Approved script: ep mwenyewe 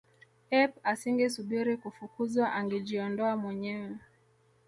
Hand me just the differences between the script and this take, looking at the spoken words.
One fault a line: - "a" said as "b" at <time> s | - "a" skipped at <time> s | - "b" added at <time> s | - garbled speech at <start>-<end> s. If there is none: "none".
- "asingesubiri kufukuzwa angejiondoa" added at 0.9 s